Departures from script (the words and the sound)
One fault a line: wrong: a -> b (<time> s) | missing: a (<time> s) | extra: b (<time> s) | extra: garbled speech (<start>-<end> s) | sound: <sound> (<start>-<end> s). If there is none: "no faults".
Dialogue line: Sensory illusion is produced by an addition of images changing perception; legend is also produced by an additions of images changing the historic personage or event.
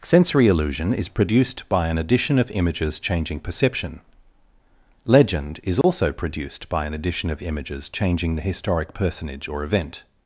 sound: dropout (5.8-5.8 s)
wrong: additions -> addition (7.0 s)